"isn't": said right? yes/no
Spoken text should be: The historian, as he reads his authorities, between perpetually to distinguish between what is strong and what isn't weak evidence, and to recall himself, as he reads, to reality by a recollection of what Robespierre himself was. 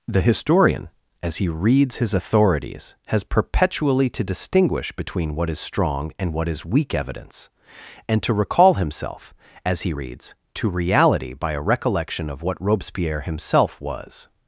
no